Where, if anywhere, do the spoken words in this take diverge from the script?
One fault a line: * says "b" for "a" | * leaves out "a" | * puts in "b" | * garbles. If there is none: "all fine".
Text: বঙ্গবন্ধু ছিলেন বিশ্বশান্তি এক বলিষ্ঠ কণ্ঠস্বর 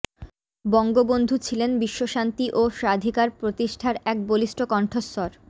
* puts in "ও স্বাধিকার প্রতিষ্ঠার"